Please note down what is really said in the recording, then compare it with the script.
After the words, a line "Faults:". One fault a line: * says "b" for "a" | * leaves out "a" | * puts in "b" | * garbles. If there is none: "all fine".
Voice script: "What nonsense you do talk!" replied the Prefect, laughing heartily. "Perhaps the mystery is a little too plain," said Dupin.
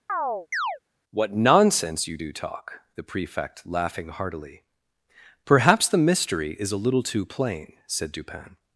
"What nonsense you do talk!" the Prefect, laughing heartily. "Perhaps the mystery is a little too plain," said Dupin.
Faults:
* leaves out "replied"